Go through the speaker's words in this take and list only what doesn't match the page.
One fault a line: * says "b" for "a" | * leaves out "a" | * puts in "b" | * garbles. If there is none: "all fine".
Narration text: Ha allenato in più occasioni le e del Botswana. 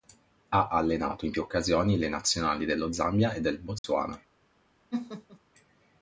* puts in "nazionali dello Zambia"